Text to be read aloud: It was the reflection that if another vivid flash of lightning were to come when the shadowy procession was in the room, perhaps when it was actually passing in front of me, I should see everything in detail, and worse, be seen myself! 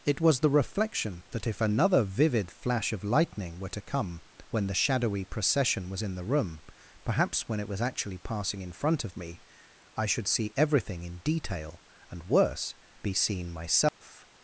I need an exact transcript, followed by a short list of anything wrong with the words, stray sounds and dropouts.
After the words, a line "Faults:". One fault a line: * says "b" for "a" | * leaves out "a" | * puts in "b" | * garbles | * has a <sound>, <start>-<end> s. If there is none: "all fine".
It was the reflection that if another vivid flash of lightning were to come when the shadowy procession was in the room, perhaps when it was actually passing in front of me, I should see everything in detail, and worse, be seen myself!
Faults:
* has a dropout, 13.9-14.0 s